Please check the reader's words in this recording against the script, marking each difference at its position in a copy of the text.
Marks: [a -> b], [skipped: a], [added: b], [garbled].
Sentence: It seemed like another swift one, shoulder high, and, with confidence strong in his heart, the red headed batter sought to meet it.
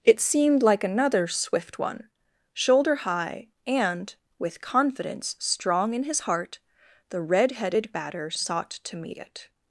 It seemed like another swift one, shoulder high, and, with confidence strong in his heart, the red headed batter sought to meet it.